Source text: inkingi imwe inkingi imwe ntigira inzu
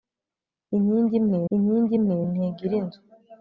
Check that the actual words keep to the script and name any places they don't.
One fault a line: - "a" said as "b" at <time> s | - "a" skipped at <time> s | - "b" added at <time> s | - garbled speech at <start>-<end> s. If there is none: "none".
none